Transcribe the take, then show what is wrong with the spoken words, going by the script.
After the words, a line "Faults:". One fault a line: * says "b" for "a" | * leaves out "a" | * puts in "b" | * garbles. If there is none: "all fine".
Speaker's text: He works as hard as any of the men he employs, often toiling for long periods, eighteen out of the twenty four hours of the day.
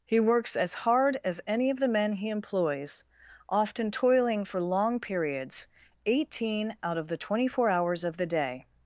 He works as hard as any of the men he employs, often toiling for long periods, eighteen out of the twenty four hours of the day.
Faults:
all fine